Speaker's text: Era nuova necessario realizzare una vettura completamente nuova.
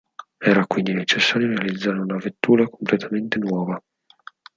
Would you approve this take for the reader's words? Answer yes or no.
no